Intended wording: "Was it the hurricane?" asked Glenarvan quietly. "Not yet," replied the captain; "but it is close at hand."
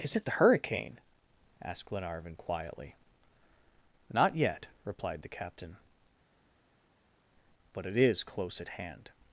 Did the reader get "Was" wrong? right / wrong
wrong